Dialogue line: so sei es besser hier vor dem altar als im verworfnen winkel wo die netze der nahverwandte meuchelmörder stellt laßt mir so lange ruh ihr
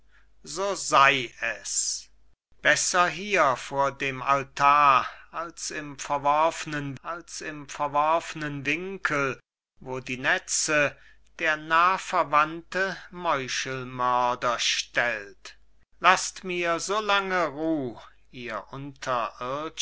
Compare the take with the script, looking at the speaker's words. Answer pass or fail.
fail